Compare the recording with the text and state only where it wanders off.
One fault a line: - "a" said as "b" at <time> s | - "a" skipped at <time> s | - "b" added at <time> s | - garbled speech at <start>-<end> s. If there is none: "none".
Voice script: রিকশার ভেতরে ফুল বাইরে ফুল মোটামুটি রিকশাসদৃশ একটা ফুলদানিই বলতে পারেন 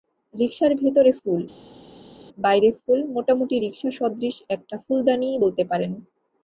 none